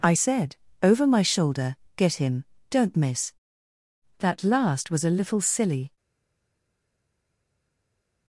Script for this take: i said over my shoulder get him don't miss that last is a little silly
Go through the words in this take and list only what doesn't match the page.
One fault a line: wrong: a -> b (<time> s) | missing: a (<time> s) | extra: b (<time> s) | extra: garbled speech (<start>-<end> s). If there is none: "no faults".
wrong: is -> was (4.9 s)